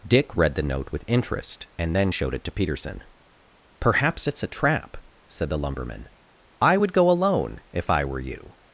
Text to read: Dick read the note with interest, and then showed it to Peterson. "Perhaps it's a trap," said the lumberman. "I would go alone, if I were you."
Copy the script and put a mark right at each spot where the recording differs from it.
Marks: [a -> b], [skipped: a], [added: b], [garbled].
Dick read the note with interest, and then showed it to Peterson. "Perhaps it's a trap," said the lumberman. "I would go alone, if I were you."